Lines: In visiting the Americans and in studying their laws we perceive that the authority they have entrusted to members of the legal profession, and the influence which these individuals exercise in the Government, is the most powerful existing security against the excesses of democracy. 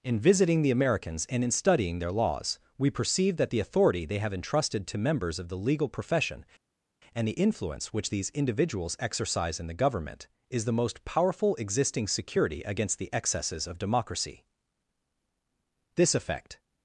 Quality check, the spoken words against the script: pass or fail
fail